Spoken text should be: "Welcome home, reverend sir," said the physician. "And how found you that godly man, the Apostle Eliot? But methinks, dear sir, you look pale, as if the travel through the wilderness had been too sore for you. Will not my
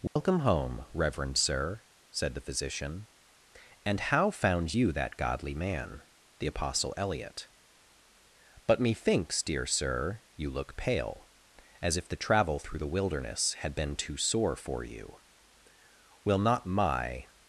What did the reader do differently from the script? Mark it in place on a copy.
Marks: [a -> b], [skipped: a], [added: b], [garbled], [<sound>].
"Welcome [dropout] home, reverend sir," said the physician. "And how found you that godly man, the Apostle Eliot? But methinks, dear sir, you look pale, as if the travel through the wilderness had been too sore for you. Will not my